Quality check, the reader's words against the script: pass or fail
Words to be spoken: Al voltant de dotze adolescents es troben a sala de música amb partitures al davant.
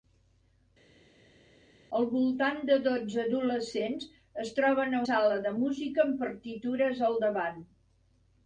pass